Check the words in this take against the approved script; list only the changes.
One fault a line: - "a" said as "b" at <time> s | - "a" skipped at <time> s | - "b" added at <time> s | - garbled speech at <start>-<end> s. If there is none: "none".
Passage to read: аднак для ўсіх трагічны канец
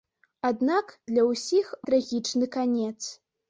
none